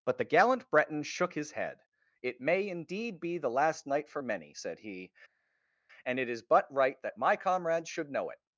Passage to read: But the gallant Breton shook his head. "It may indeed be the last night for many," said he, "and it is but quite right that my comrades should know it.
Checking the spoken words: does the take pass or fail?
fail